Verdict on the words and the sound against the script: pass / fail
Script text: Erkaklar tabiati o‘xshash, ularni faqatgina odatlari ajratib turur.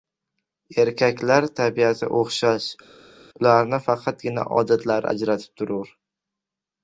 pass